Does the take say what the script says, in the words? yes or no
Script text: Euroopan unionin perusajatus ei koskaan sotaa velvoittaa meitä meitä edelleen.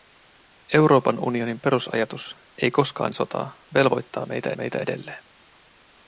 yes